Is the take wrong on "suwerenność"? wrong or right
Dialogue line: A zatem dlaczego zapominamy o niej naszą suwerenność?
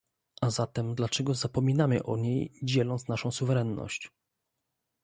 right